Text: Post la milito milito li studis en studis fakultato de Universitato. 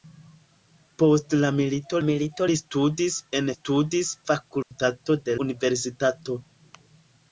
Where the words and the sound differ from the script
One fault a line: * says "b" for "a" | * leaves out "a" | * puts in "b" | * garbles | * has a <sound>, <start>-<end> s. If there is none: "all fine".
* has a dropout, 4.6-4.7 s